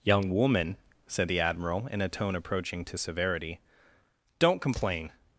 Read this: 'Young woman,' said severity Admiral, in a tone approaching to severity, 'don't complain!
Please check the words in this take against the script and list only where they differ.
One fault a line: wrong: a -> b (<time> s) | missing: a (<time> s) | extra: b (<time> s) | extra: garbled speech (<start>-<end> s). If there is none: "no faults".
wrong: severity -> the (1.3 s)